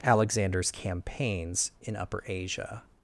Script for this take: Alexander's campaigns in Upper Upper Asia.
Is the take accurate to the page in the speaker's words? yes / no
no